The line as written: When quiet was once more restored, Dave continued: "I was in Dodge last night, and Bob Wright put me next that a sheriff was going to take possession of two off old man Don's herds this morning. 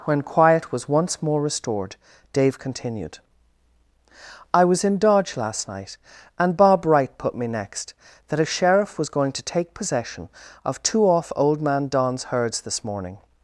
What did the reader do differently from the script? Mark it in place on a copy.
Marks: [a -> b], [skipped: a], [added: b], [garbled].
When quiet was once more restored, Dave continued: "I was in Dodge last night, and Bob Wright put me next that a sheriff was going to take possession of two off old man Don's herds this morning.